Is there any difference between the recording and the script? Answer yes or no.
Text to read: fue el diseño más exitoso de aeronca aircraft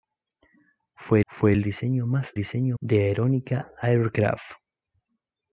yes